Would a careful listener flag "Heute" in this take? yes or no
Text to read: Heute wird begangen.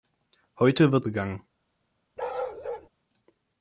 no